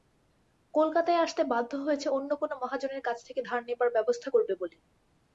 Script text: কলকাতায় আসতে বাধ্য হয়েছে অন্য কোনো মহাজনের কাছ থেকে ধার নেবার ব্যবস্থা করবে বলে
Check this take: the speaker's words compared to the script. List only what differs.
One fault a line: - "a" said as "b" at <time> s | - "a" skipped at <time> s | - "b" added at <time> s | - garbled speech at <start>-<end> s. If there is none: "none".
none